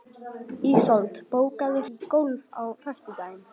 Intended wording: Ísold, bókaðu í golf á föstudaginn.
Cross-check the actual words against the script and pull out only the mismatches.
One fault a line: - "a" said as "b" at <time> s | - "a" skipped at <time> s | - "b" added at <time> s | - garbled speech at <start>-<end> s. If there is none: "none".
none